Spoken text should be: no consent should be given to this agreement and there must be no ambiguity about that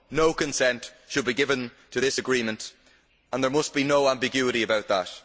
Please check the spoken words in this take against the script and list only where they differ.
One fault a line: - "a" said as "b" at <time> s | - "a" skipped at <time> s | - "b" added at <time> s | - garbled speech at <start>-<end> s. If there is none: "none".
none